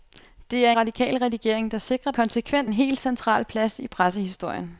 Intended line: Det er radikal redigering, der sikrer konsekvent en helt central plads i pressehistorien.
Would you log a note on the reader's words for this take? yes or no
no